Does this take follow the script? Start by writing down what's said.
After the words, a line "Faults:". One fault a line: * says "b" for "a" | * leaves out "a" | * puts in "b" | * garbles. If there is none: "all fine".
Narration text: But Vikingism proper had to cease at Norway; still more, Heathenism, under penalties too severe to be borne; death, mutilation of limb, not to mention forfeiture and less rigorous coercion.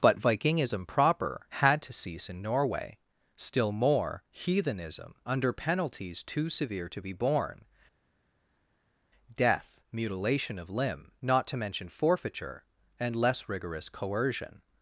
But Vikingism proper had to cease in Norway; still more, Heathenism, under penalties too severe to be borne; death, mutilation of limb, not to mention forfeiture and less rigorous coercion.
Faults:
* says "in" for "at"